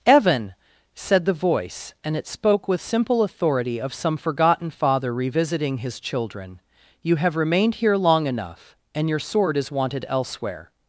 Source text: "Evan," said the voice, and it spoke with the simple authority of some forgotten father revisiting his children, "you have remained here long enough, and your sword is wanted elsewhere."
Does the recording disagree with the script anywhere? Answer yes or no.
yes